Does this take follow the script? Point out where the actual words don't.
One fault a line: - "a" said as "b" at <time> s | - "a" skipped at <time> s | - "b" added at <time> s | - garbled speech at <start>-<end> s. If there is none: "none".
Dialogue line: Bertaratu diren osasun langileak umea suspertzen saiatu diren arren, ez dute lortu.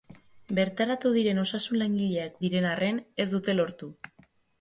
- "umea suspertzen saiatu" skipped at 2.4 s